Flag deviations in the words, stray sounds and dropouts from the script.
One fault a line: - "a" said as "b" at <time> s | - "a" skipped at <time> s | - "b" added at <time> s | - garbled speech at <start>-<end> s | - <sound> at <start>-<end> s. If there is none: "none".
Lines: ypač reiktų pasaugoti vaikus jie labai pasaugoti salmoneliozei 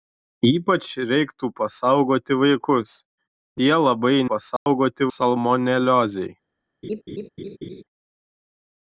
- dropout at 4.6-4.7 s
- laugh at 6.8-7.8 s